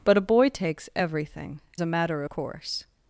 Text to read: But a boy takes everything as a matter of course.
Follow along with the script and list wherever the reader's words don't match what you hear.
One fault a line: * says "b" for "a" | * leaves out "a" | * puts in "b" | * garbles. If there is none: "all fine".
* leaves out "as"
* leaves out "of"